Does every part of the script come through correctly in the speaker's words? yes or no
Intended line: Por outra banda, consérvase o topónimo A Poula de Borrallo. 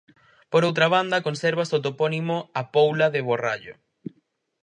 yes